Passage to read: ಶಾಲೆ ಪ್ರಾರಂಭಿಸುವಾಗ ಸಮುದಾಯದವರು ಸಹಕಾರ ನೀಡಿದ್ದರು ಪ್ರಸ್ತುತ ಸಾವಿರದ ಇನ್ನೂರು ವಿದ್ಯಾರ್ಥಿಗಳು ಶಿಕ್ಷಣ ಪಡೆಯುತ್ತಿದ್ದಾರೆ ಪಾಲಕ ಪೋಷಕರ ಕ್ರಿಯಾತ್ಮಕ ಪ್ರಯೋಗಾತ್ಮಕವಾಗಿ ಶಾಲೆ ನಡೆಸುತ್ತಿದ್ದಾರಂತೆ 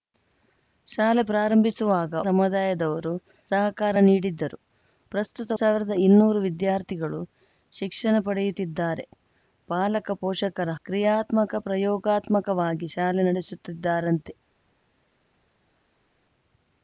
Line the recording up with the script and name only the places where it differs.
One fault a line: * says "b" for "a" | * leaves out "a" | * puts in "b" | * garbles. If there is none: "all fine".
all fine